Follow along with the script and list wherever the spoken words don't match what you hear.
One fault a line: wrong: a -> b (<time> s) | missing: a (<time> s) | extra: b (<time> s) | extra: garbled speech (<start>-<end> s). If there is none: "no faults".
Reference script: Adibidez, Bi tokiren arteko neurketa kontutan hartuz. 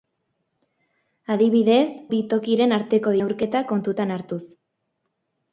no faults